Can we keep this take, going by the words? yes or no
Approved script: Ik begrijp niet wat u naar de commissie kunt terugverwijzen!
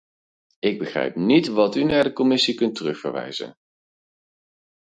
yes